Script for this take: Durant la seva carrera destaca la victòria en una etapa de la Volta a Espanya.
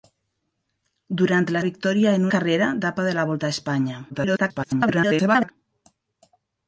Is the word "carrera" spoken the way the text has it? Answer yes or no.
no